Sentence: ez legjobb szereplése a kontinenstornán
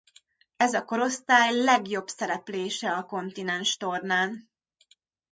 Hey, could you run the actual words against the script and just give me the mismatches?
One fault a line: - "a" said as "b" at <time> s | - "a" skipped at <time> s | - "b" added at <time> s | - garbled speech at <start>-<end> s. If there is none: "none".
- "a korosztály" added at 0.7 s